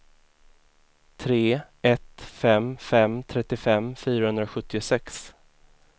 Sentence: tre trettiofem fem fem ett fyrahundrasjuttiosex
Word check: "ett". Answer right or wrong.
wrong